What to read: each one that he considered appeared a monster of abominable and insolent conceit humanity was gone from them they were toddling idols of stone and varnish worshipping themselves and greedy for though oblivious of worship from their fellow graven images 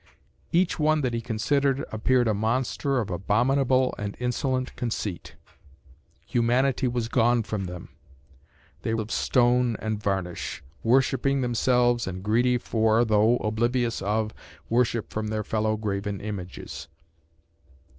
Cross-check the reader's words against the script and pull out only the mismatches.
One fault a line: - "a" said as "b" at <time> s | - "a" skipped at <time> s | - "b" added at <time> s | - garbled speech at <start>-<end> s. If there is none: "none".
- "were toddling idols" skipped at 8.9 s